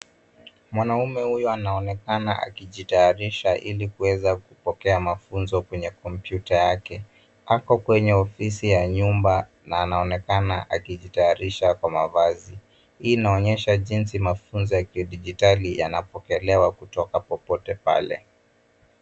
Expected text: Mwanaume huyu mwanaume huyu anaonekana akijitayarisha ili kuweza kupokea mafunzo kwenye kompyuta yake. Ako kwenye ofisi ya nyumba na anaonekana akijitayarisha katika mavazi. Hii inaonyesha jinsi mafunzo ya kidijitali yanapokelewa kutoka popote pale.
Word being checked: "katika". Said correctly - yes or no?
no